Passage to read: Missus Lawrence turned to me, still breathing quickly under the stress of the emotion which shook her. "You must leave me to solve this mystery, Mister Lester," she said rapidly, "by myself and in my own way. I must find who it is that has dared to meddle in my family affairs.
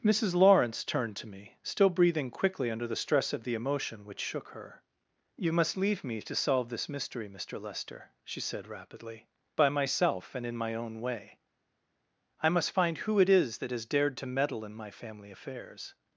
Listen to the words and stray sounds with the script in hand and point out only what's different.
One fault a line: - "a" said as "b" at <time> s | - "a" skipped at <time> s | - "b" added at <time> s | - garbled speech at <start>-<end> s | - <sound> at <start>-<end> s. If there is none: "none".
none